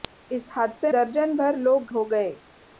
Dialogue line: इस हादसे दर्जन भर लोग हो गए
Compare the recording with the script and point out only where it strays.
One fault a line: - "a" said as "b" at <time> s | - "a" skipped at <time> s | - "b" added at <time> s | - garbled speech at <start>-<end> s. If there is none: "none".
none